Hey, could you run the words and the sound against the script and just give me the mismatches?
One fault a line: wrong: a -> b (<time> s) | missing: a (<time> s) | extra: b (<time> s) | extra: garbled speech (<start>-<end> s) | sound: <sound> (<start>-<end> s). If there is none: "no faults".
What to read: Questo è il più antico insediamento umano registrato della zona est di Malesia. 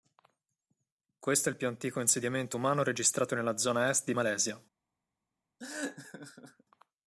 wrong: della -> nella (3.4 s)
sound: laugh (5.6-6.6 s)